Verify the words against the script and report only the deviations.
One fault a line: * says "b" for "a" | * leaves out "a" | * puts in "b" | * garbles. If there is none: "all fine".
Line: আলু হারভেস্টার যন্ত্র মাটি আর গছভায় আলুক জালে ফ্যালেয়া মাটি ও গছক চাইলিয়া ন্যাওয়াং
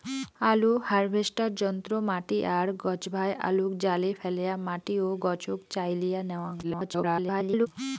* garbles